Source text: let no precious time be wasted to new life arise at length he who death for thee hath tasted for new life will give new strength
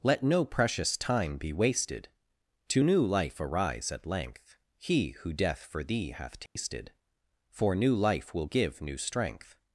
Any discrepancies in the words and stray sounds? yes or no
yes